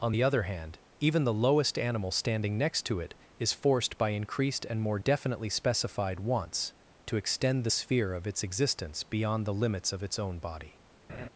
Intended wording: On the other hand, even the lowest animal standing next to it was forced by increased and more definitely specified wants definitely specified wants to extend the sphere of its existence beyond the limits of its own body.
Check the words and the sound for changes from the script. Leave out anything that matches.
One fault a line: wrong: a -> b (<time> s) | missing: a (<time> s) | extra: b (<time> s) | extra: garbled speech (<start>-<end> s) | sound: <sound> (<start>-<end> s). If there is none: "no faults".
wrong: was -> is (3.4 s)
missing: definitely specified wants (6.7 s)
sound: laugh (11.1-11.3 s)